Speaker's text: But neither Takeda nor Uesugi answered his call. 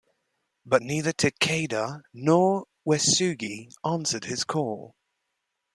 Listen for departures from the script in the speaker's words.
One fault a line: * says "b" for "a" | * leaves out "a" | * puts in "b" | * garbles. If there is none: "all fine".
all fine